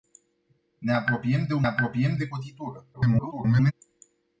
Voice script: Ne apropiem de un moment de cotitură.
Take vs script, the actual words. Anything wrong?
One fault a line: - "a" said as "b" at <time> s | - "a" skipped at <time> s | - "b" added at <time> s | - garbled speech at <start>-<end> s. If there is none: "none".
- "moment" said as "apropiem" at 1.6 s
- garbled speech at 2.9-3.7 s